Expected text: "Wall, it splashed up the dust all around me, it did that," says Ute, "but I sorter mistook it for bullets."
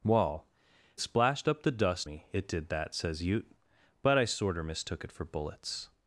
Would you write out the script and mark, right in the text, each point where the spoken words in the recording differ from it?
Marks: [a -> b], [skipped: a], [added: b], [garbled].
"Wall, [skipped: it] splashed up the dust [skipped: all around] me, it did that," says Ute, "but I sorter mistook it for bullets."